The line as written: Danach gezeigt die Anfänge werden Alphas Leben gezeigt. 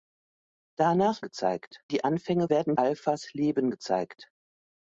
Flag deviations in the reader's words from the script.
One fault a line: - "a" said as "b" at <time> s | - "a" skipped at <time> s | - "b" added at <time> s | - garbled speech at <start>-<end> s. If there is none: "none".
none